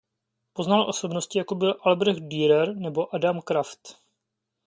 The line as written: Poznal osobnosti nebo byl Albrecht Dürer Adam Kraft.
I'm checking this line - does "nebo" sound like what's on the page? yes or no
no